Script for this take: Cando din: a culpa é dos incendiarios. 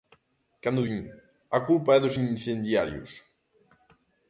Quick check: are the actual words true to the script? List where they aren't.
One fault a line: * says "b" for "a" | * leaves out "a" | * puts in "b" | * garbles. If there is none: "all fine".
all fine